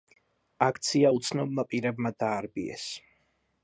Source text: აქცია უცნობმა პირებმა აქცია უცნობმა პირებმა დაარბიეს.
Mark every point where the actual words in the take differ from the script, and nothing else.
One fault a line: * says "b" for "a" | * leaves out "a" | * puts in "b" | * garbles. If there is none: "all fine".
* leaves out "აქცია უცნობმა პირებმა"